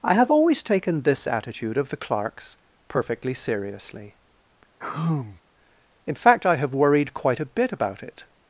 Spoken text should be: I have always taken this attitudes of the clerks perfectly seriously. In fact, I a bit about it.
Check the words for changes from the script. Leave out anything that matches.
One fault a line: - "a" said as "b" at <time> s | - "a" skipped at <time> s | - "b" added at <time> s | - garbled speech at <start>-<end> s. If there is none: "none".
- "attitudes" said as "attitude" at 1.3 s
- "have worried quite" added at 6.6 s